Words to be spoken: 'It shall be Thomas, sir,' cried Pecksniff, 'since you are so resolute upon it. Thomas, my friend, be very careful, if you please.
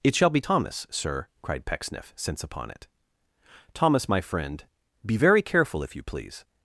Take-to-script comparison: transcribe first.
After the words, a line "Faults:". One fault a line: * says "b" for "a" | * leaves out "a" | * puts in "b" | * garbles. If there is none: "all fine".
'It shall be Thomas, sir,' cried Pecksniff, 'since upon it. Thomas, my friend, be very careful, if you please.
Faults:
* leaves out "you are so resolute"